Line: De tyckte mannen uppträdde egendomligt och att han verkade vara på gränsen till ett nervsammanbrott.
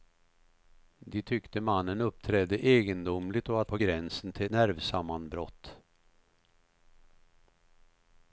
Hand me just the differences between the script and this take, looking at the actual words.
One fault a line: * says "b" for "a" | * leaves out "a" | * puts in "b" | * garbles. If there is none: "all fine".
* leaves out "han verkade vara"
* leaves out "ett"